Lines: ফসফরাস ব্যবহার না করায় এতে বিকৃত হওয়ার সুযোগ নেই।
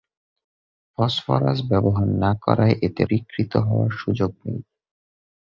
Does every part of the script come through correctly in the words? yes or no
yes